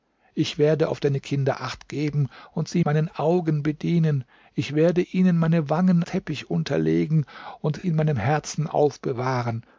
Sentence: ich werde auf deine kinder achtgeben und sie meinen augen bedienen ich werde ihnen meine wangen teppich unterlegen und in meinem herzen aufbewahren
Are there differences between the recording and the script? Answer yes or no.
no